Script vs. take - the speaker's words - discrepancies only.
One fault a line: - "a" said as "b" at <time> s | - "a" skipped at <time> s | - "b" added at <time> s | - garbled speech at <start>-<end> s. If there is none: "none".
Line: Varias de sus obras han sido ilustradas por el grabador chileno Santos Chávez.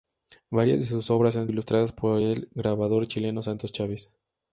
- "sido" skipped at 1.5 s